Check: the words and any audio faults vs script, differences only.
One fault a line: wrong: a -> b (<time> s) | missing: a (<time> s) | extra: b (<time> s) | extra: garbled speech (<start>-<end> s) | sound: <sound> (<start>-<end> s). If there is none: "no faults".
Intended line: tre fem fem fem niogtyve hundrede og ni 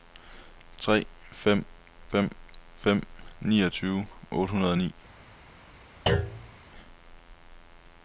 extra: otte (4.3 s)
sound: thud (6.1-6.5 s)